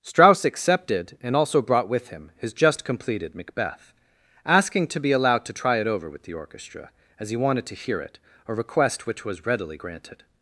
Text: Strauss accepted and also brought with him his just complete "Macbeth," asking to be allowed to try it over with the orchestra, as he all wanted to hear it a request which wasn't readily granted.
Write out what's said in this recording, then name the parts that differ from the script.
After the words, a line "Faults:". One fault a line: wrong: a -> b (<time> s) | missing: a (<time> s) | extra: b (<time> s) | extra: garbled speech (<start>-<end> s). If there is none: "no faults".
Strauss accepted and also brought with him his just completed "Macbeth," asking to be allowed to try it over with the orchestra, as he wanted to hear it a request which was readily granted.
Faults:
wrong: complete -> completed (2.8 s)
missing: all (7.4 s)
wrong: wasn't -> was (9.2 s)